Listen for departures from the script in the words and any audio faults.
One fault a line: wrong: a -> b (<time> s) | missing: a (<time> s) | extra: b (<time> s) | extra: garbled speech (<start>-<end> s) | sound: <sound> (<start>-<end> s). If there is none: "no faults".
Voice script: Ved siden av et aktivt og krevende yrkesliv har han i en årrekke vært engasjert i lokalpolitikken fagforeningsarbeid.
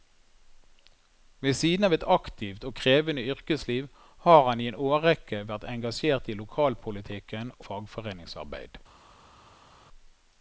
no faults